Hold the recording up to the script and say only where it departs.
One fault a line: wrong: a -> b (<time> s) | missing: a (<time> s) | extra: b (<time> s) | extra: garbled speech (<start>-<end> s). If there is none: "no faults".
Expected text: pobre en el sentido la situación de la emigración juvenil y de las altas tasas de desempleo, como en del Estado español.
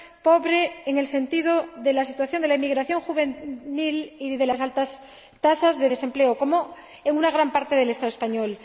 extra: de (1.8 s)
extra: una gran parte (7.2 s)